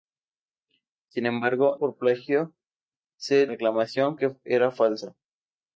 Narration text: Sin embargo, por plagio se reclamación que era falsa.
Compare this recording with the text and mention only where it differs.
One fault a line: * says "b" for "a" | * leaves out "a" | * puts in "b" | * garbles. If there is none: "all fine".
all fine